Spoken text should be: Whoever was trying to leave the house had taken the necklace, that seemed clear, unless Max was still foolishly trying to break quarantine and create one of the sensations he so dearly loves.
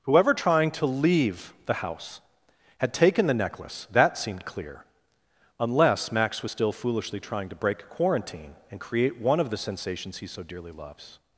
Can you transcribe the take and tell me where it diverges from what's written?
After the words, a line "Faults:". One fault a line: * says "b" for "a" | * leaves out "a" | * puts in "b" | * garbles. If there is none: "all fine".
Whoever trying to leave the house had taken the necklace, that seemed clear, unless Max was still foolishly trying to break quarantine and create one of the sensations he so dearly loves.
Faults:
* leaves out "was"